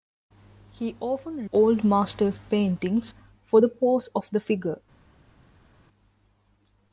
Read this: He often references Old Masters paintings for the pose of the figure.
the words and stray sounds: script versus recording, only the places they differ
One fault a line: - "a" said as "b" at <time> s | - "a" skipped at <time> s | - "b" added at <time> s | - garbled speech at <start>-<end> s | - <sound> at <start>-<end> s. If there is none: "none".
- "references" skipped at 1.5 s